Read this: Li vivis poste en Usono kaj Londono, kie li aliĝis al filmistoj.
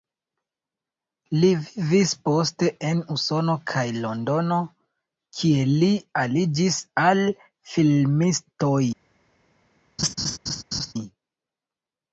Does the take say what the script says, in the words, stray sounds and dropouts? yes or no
no